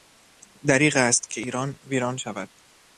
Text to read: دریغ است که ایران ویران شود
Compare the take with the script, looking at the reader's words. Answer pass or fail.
pass